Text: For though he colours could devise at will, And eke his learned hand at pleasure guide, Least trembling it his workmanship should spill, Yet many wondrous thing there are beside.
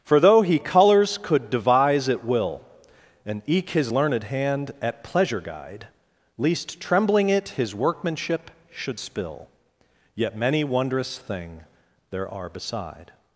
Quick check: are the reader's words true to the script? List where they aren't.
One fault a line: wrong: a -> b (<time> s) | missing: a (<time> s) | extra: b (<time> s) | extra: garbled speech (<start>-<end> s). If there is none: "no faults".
no faults